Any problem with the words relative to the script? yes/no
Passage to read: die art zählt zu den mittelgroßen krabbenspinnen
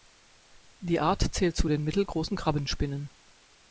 no